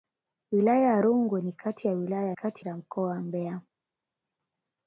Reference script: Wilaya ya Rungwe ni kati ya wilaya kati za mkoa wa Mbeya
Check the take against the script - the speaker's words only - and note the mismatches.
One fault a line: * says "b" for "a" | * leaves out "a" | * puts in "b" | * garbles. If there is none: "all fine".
all fine